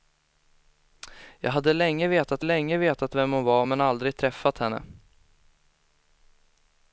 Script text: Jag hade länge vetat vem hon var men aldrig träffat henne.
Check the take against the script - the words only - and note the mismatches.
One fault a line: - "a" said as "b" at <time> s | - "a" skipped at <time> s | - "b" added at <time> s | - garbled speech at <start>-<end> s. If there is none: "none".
- "länge vetat" added at 2.4 s